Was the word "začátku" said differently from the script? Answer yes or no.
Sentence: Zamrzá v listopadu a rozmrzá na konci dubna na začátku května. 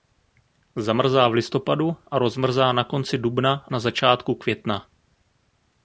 no